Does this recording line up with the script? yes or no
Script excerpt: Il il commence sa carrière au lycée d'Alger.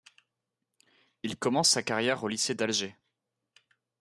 no